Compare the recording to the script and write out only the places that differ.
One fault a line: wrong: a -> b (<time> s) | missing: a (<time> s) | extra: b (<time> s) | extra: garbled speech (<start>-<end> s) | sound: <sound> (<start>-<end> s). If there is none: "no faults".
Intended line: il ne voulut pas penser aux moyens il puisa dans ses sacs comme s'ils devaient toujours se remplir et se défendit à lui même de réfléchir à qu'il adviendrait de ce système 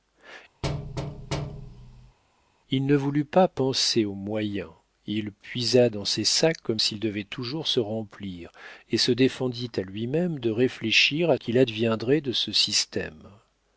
sound: thud (0.6-2.2 s)